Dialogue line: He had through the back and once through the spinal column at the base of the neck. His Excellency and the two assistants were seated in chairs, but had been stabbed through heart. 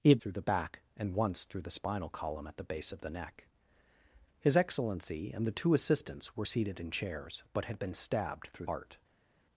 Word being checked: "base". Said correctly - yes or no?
yes